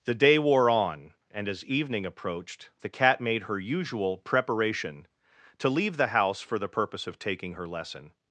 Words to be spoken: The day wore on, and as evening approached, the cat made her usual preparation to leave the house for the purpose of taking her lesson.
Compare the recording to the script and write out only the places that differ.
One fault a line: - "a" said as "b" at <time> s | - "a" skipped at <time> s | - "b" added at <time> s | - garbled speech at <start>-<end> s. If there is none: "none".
none